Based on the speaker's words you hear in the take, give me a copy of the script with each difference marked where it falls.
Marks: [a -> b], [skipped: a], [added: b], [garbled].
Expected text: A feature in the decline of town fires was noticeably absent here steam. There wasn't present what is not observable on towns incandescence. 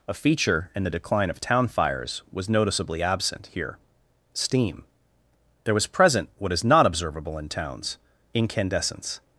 A feature in the decline of town fires was noticeably absent here steam. There [wasn't -> was] present what is not observable [on -> in] towns incandescence.